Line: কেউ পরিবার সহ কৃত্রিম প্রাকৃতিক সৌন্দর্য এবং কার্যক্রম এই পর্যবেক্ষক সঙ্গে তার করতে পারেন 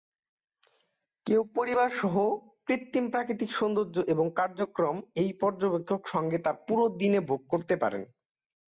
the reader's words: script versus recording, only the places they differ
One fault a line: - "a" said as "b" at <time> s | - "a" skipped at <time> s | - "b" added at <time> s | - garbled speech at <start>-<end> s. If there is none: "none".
- "পুরো দিনে ভোগ" added at 6.7 s